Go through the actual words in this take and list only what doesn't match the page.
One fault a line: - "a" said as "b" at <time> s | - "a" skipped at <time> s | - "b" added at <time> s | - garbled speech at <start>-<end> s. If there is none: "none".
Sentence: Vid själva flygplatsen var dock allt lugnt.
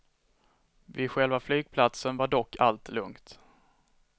none